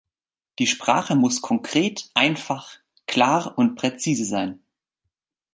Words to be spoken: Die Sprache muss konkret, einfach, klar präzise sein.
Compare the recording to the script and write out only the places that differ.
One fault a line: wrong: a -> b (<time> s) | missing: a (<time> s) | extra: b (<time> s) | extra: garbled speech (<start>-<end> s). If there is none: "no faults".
extra: und (3.6 s)